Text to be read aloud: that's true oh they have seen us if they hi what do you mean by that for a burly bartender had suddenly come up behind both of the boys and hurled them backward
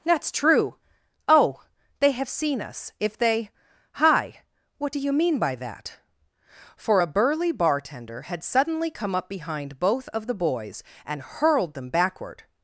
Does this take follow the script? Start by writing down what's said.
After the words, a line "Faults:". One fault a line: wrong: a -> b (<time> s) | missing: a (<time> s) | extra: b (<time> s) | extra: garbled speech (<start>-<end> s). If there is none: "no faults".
that's true oh they have seen us if they hi what do you mean by that for a burly bartender had suddenly come up behind both of the boys and hurled them backward
Faults:
no faults